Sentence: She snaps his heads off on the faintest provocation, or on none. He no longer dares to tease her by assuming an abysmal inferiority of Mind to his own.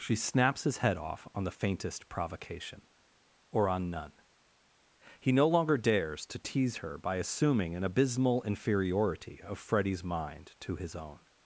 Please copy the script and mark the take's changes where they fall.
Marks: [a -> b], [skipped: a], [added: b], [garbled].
She snaps his [heads -> head] off on the faintest provocation, or on none. He no longer dares to tease her by assuming an abysmal inferiority of [added: Freddy's] Mind to his own.